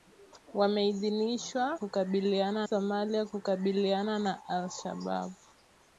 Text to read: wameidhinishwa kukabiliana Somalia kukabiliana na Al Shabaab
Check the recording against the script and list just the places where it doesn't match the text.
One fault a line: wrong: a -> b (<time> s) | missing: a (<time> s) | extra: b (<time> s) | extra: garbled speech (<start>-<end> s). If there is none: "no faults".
no faults